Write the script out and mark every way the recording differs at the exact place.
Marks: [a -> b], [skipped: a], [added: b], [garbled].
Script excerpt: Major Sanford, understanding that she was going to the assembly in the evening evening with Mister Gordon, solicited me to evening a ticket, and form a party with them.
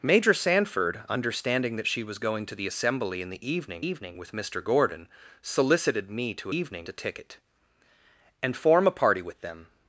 Major Sanford, understanding that she was going to the assembly in the evening evening with Mister Gordon, solicited me to evening a ticket, and form a party with them.